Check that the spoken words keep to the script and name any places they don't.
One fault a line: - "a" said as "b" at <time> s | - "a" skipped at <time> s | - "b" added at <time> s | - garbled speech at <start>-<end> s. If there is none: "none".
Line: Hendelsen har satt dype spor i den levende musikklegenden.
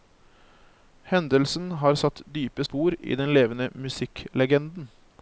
none